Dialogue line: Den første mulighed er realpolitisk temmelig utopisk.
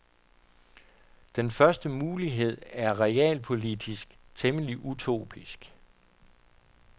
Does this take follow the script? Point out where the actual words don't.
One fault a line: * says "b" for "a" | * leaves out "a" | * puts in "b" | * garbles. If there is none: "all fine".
all fine